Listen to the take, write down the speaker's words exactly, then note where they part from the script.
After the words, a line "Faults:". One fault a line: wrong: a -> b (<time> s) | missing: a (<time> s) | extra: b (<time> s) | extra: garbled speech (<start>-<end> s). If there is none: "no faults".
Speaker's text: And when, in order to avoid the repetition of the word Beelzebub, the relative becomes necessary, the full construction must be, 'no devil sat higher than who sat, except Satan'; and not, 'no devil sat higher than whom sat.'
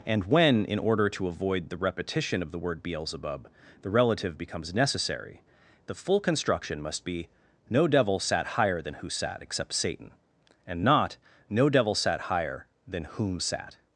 And when, in order to avoid the repetition of the word Beelzebub, the relative becomes necessary, the full construction must be, 'no devil sat higher than who sat, except Satan'; and not, 'no devil sat higher than whom sat.'
Faults:
no faults